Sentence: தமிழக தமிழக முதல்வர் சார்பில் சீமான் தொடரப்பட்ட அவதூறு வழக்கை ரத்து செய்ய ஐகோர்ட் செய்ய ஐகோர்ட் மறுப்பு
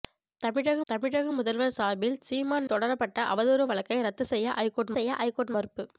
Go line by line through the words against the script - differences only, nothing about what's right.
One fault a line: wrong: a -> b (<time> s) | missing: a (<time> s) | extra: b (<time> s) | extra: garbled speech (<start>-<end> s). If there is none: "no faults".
no faults